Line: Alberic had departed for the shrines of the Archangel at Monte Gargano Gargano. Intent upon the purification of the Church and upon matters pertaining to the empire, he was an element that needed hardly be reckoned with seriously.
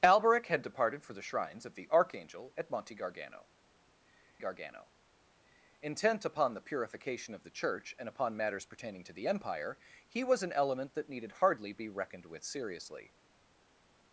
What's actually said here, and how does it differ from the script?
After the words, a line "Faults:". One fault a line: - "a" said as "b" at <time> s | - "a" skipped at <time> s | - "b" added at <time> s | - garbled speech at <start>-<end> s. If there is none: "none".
Alberic had departed for the shrines of the Archangel at Monte Gargano Gargano. Intent upon the purification of the Church and upon matters pertaining to the empire, he was an element that needed hardly be reckoned with seriously.
Faults:
none